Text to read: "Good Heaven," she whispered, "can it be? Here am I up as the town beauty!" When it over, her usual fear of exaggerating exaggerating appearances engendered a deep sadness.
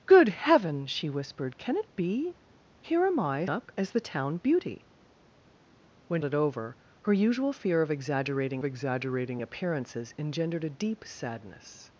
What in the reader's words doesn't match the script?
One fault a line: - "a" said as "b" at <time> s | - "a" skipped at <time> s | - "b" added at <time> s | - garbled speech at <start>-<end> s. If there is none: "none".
none